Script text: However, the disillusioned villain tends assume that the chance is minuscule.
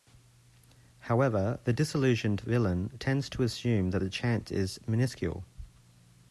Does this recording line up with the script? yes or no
no